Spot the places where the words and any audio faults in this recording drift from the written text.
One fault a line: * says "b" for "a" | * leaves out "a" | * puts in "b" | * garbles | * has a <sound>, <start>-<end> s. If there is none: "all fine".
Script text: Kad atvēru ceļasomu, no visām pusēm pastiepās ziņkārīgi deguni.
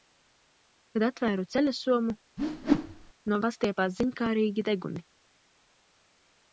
* has a whoosh, 2.4-3.1 s
* leaves out "visām pusēm"